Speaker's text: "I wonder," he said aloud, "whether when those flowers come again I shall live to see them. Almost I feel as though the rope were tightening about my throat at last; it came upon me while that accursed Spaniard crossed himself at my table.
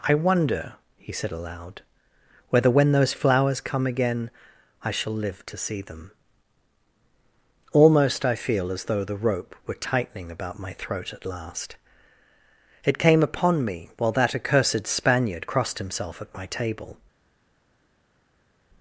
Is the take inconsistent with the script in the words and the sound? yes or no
no